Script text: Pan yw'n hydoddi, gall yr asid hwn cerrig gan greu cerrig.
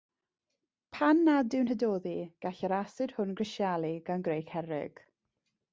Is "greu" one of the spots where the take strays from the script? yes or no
no